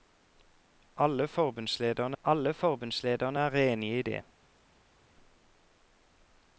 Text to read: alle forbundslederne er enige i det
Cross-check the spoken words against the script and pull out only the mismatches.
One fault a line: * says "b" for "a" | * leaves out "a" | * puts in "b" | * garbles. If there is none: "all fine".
* puts in "alle forbundslederne"